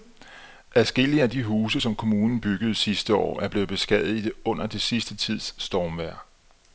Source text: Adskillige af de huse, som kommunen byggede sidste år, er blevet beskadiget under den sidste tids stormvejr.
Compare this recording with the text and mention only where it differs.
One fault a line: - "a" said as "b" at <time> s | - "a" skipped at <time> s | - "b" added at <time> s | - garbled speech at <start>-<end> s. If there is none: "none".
none